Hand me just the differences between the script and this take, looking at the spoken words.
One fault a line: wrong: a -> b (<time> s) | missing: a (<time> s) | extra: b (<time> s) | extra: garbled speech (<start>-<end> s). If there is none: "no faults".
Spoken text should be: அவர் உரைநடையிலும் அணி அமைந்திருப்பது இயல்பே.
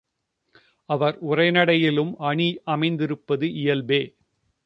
no faults